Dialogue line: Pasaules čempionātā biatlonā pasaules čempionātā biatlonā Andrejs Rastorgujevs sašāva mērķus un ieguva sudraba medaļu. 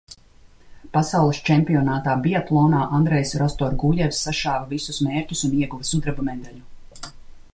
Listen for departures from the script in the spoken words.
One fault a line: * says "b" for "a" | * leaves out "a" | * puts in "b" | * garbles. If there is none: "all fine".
* leaves out "pasaules čempionātā biatlonā"
* puts in "visus"